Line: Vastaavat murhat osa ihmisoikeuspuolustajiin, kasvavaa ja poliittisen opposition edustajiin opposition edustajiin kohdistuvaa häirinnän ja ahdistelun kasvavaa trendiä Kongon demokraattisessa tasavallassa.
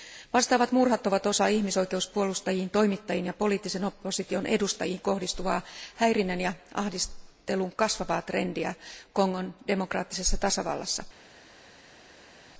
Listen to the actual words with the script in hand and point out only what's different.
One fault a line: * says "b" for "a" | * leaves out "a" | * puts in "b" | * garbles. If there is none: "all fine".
* puts in "ovat"
* says "toimittajiin" for "kasvavaa"
* leaves out "opposition edustajiin"